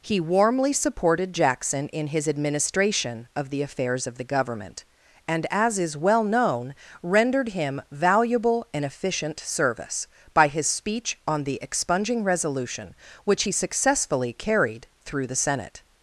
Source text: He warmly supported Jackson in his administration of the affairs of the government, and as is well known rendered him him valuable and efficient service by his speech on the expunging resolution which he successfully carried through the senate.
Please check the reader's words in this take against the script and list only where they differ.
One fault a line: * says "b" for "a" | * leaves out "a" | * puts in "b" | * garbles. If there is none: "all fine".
* leaves out "him"